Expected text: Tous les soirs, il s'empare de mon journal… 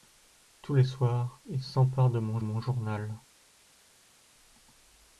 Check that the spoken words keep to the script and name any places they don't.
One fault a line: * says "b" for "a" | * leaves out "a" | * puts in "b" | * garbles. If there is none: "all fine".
* puts in "mon"